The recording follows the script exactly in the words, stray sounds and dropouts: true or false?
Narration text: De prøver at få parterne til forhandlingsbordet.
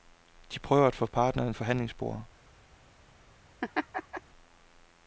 false